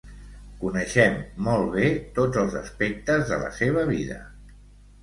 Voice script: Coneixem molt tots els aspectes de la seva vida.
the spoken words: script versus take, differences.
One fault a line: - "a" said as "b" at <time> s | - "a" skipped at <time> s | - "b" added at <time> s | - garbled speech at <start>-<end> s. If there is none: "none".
- "bé" added at 1.8 s